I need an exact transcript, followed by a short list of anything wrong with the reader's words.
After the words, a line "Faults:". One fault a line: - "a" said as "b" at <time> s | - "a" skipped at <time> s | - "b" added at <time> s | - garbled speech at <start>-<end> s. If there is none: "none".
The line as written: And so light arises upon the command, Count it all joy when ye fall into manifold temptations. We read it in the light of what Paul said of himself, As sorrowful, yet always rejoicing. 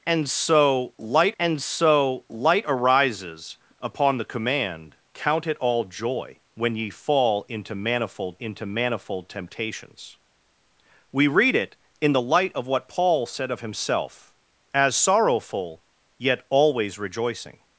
And so light and so light arises upon the command, Count it all joy when ye fall into manifold into manifold temptations. We read it in the light of what Paul said of himself, As sorrowful, yet always rejoicing.
Faults:
- "and so light" added at 1.4 s
- "into manifold" added at 8.4 s